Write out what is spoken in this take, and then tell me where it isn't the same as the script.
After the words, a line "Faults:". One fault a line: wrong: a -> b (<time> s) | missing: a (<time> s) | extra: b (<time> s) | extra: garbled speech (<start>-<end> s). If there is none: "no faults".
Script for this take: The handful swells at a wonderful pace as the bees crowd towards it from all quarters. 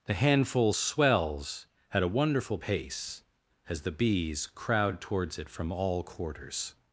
The handful swells at a wonderful pace as the bees crowd towards it from all quarters.
Faults:
no faults